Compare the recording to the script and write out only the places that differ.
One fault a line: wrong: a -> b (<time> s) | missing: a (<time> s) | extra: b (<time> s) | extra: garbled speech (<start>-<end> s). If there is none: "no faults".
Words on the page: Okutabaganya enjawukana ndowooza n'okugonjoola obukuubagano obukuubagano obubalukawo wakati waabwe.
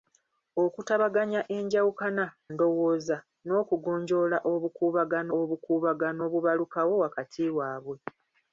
no faults